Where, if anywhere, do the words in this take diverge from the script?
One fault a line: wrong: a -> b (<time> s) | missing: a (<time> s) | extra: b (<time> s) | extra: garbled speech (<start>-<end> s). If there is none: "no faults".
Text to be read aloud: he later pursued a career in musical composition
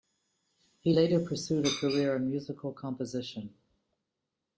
no faults